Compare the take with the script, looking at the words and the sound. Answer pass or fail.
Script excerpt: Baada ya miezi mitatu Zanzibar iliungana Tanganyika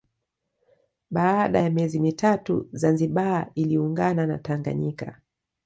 fail